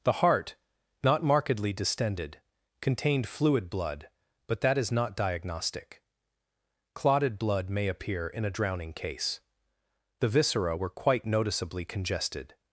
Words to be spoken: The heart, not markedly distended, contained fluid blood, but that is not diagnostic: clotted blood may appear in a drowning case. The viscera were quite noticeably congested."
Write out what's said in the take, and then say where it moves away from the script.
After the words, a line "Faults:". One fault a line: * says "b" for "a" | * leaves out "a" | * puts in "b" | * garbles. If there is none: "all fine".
The heart, not markedly distended, contained fluid blood, but that is not diagnostic: clotted blood may appear in a drowning case. The viscera were quite noticeably congested."
Faults:
all fine